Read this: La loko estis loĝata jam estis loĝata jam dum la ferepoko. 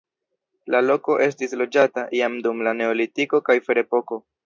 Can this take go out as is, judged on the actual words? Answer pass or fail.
fail